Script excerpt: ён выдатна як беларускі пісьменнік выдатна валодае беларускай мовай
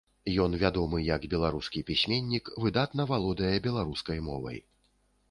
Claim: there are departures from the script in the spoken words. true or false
true